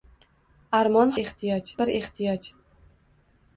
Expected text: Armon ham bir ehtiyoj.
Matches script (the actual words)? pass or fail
fail